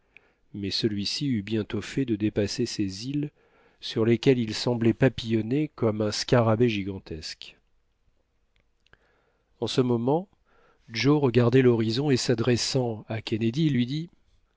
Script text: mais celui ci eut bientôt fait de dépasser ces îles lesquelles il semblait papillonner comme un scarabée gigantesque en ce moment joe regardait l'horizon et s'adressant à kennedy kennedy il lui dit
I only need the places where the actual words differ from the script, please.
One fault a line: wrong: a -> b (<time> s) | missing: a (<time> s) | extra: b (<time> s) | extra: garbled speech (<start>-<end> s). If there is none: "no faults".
extra: sur (3.8 s)
missing: kennedy (13.7 s)